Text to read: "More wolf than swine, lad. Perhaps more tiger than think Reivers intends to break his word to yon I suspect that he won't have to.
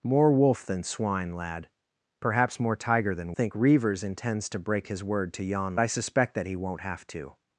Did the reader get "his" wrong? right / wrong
right